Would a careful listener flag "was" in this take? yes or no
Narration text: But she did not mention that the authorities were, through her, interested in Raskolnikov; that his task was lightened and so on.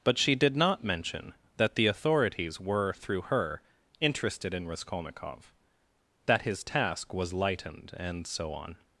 no